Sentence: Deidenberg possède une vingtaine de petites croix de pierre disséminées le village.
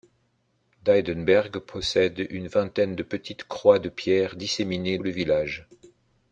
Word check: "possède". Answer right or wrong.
right